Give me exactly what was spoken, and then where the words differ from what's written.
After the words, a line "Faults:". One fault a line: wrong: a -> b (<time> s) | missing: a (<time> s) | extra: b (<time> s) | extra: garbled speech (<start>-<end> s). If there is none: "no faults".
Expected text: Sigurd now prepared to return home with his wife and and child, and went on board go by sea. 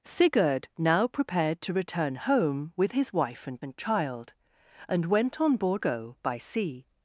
Sigurd now prepared to return home with his wife and and child, and went on board go by sea.
Faults:
no faults